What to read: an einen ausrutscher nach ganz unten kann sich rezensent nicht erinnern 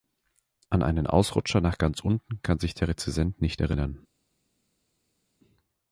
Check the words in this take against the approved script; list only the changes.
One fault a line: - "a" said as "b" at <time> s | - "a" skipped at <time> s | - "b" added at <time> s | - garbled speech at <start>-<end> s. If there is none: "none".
- "der" added at 2.7 s